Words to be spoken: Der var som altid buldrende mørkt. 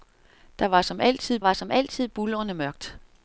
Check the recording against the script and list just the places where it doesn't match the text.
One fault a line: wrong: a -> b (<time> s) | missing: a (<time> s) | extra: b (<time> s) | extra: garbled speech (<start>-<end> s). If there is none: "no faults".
extra: var som altid (1.4 s)